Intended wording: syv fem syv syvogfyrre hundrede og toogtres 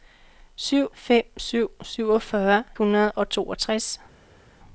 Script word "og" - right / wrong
right